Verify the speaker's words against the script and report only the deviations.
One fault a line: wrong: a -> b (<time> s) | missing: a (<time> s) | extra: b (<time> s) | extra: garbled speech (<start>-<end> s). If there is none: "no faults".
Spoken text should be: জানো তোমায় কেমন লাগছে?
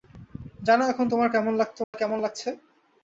extra: এখন (0.8 s)